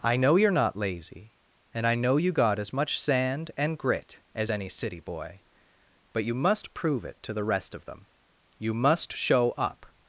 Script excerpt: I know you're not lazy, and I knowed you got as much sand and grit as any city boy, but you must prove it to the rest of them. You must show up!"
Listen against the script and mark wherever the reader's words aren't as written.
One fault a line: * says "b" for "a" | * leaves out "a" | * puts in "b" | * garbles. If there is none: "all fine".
* says "know" for "knowed"